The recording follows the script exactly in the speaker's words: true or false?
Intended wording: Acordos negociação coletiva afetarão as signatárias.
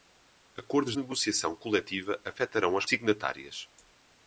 true